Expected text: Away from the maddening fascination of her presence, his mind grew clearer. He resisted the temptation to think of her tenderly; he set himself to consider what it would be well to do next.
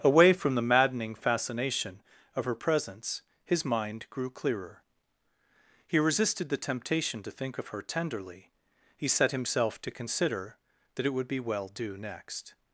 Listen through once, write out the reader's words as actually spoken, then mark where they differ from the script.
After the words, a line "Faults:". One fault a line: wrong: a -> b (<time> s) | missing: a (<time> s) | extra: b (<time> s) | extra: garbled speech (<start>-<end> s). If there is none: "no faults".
Away from the maddening fascination of her presence, his mind grew clearer. He resisted the temptation to think of her tenderly; he set himself to consider that it would be well do next.
Faults:
wrong: what -> that (11.0 s)
missing: to (11.7 s)